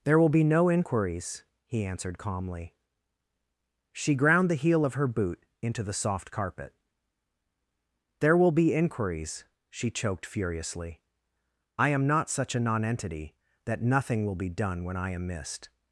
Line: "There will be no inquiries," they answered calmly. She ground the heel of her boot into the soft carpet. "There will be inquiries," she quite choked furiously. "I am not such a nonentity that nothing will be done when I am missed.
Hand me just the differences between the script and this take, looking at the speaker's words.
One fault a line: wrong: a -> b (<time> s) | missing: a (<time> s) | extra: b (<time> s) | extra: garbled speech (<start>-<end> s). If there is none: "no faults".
wrong: they -> he (1.7 s)
missing: quite (9.9 s)